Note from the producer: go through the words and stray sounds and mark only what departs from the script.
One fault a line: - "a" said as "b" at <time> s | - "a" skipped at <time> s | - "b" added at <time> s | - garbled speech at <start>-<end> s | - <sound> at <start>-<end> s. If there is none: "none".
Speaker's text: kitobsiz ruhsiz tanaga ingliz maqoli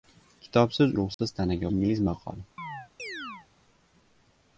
- dropout at 1.1-1.2 s
- chirp at 2.6-3.5 s